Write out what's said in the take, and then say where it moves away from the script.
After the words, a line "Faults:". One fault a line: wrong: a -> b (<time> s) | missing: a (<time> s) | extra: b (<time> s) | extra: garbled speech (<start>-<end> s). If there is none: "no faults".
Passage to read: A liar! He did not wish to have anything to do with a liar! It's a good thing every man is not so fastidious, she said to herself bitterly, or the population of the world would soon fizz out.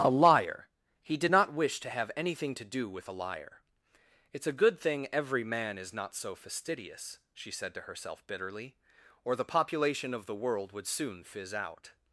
A liar! He did not wish to have anything to do with a liar! It's a good thing every man is not so fastidious, she said to herself bitterly, or the population of the world would soon fizz out.
Faults:
no faults